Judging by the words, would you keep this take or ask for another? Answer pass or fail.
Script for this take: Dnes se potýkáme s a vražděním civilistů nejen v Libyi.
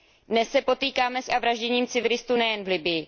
pass